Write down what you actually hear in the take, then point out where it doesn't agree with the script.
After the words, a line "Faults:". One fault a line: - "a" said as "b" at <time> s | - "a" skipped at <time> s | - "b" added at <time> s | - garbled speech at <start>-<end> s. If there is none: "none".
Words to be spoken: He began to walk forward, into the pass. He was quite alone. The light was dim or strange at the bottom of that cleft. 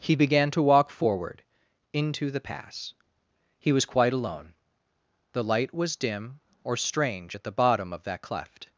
He began to walk forward, into the pass. He was quite alone. The light was dim or strange at the bottom of that cleft.
Faults:
none